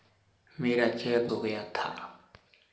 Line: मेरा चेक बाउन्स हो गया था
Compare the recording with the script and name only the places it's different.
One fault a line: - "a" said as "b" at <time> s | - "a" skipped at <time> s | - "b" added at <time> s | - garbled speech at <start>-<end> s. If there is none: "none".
- "बाउन्स" skipped at 1.3 s